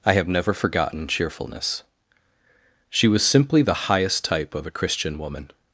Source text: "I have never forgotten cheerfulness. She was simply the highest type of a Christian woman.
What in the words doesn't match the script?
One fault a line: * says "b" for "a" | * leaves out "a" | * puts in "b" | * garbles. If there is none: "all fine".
all fine